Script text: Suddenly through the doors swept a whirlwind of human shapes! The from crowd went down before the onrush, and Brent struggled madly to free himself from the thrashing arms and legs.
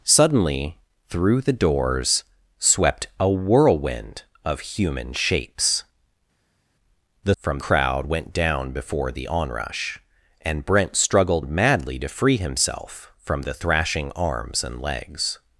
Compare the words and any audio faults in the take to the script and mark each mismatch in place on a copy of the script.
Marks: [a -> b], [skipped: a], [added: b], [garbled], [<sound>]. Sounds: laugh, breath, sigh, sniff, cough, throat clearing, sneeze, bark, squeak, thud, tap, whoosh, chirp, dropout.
Suddenly through the doors swept a whirlwind of human shapes! The from crowd went down before the onrush, and Brent struggled madly to free himself from the thrashing arms and legs.